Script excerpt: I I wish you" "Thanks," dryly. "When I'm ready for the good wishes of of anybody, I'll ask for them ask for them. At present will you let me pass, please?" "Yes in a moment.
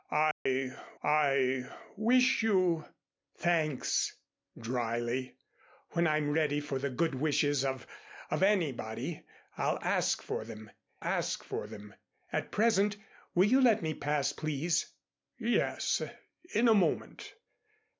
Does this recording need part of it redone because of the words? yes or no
no